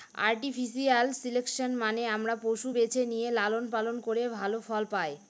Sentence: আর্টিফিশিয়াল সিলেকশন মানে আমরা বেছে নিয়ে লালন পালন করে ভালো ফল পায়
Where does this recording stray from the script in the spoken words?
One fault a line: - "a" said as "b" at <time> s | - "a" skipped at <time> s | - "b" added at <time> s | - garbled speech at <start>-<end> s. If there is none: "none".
- "পশু" added at 2.4 s